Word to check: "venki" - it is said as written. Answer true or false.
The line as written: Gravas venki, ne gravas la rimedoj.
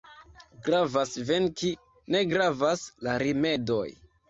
true